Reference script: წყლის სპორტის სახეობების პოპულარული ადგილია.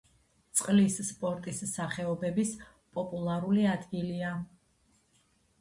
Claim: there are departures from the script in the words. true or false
false